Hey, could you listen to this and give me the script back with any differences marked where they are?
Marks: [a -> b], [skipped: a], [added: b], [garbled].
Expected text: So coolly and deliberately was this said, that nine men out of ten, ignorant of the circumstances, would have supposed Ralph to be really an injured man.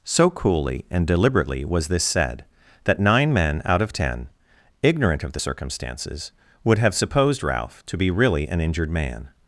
So coolly and deliberately was this said, that nine men out of ten, ignorant of the circumstances, would have supposed Ralph to be really an injured man.